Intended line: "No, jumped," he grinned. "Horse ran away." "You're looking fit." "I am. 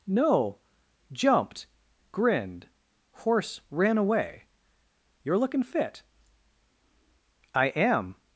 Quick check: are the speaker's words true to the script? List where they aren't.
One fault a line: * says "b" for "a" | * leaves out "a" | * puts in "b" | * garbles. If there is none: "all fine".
* leaves out "he"